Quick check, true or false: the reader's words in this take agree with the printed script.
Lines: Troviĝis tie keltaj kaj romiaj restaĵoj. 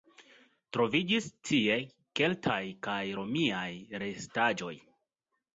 true